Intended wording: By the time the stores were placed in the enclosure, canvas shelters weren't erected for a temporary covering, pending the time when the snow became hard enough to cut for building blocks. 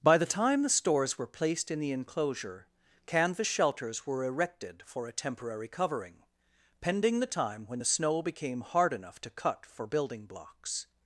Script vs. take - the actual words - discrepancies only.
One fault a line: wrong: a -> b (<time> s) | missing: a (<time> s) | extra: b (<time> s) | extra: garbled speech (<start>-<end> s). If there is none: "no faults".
wrong: weren't -> were (4.1 s)